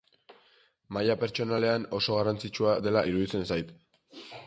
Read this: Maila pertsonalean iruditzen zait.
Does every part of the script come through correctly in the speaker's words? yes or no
no